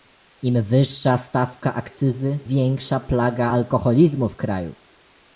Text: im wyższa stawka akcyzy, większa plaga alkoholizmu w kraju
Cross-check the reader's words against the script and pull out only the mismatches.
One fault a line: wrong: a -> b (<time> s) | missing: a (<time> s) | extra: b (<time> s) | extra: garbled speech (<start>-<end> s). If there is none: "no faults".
no faults